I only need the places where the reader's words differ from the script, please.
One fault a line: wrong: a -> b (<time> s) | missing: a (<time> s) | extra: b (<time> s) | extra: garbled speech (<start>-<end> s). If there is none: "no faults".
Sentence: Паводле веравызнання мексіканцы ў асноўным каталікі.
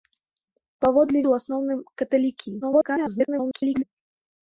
missing: веравызнання мексіканцы (1.2 s)
extra: garbled speech (2.6-3.8 s)